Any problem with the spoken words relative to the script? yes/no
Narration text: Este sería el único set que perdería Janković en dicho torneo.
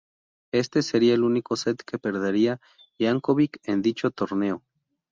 no